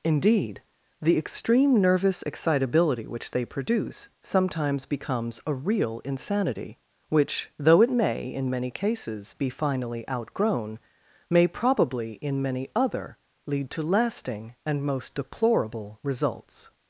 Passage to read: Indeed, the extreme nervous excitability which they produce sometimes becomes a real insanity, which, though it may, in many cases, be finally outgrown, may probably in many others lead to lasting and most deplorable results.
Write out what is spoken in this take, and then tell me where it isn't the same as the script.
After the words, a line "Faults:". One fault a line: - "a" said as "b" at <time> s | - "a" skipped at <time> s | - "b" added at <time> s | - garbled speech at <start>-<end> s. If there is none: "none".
Indeed, the extreme nervous excitability which they produce sometimes becomes a real insanity, which, though it may, in many cases, be finally outgrown, may probably in many other lead to lasting and most deplorable results.
Faults:
- "others" said as "other" at 12.7 s